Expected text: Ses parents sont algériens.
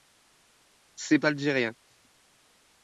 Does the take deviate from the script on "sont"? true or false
true